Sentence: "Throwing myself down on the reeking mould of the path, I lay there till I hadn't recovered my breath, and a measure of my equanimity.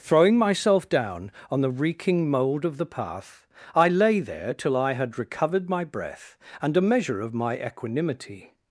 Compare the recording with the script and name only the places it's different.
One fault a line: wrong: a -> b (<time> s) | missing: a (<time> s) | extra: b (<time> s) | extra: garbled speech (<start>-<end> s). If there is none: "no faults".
wrong: hadn't -> had (4.9 s)